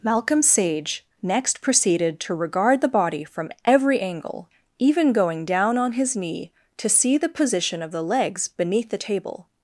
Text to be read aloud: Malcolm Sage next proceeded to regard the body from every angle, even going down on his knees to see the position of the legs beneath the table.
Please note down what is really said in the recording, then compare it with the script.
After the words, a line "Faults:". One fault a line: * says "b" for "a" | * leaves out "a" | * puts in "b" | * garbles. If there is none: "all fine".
Malcolm Sage next proceeded to regard the body from every angle, even going down on his knee to see the position of the legs beneath the table.
Faults:
* says "knee" for "knees"